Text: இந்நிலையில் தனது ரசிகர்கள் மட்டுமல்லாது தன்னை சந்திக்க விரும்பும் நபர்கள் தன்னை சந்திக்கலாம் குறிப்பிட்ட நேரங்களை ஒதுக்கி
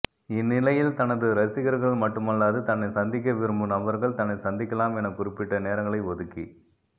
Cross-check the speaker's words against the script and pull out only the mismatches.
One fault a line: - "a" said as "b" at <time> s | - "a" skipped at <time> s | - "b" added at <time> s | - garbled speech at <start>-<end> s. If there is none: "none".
- "என" added at 5.0 s